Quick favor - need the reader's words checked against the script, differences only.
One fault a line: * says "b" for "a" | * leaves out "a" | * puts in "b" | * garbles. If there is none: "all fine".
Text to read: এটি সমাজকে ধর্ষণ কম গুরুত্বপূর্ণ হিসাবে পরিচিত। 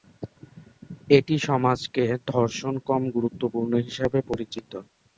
all fine